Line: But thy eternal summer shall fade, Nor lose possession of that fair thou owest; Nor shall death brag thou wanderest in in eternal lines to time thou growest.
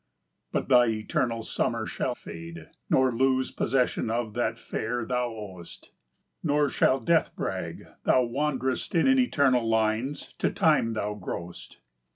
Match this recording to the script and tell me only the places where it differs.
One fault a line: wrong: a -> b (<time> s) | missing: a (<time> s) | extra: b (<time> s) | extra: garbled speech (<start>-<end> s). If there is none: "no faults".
no faults